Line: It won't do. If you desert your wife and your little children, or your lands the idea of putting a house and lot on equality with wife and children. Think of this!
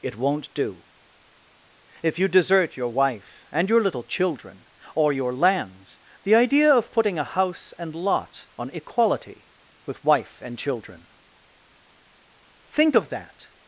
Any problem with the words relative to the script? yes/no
yes